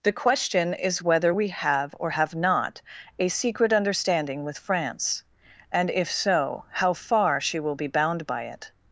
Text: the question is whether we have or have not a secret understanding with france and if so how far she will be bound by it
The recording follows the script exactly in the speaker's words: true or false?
true